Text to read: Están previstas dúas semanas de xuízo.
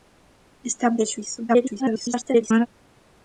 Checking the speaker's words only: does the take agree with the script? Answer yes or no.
no